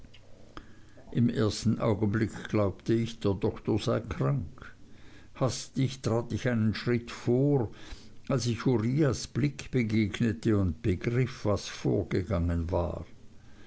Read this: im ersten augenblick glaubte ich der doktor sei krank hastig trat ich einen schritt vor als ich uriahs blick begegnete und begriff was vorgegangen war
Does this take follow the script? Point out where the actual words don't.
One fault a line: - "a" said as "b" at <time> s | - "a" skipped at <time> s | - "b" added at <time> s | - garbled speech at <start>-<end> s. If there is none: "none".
none